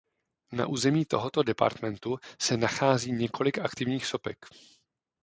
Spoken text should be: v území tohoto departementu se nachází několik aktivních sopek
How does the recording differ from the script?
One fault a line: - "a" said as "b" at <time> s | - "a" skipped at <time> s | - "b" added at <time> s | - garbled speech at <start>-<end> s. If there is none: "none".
- "v" said as "na" at 0.5 s